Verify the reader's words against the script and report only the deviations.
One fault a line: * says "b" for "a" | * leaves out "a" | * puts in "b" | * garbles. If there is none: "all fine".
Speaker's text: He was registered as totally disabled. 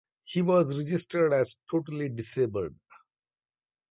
all fine